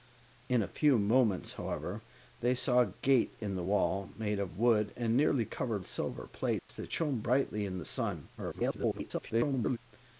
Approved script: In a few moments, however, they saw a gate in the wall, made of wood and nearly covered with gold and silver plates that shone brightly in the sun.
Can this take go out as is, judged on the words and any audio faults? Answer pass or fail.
fail